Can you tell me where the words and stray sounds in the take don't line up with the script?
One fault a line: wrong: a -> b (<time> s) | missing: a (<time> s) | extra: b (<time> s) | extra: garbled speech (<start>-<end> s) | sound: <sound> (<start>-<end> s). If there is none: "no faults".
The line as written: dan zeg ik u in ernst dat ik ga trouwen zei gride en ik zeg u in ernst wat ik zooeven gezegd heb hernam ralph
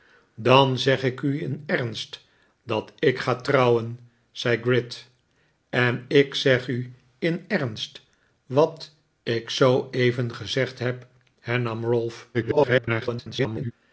extra: garbled speech (12.3-13.7 s)